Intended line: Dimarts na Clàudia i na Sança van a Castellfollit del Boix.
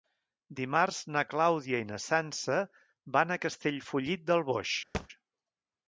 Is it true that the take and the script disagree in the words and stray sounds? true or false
true